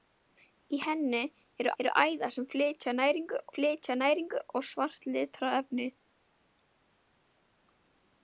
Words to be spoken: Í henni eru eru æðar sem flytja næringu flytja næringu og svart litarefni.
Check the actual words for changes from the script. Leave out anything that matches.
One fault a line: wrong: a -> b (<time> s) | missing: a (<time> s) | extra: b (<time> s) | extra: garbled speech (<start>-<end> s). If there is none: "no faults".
no faults